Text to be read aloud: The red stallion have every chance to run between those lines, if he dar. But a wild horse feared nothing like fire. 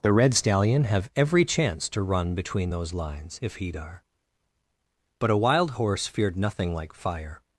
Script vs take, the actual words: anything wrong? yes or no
no